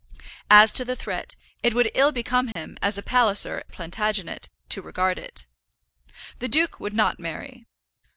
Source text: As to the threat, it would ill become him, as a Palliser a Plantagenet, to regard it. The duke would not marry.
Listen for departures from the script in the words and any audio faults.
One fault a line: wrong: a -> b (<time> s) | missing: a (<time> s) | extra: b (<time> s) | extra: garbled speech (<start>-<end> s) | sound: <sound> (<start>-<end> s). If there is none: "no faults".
sound: dropout (2.5-2.6 s)